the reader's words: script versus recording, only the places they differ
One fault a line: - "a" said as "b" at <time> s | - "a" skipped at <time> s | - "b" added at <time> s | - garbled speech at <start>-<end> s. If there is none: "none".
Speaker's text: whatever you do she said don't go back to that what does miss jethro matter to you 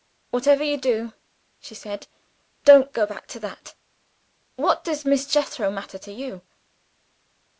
none